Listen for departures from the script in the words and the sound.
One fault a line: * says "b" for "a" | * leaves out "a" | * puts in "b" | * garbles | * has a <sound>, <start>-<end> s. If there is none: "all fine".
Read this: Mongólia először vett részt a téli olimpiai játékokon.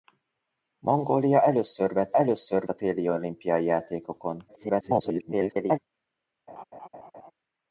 * says "először" for "részt"
* garbles
* has a laugh, 6.5-7.3 s